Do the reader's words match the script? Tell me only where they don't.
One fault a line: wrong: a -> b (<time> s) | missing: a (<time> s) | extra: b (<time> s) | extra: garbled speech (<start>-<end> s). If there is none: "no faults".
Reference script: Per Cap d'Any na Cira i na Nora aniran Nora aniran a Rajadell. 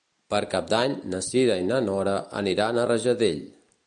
missing: Nora aniran (2.8 s)